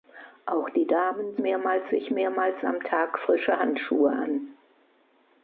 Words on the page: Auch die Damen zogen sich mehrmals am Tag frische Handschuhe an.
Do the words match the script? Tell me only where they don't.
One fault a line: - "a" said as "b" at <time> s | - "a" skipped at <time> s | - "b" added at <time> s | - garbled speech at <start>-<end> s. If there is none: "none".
- "zogen" said as "mehrmals" at 1.4 s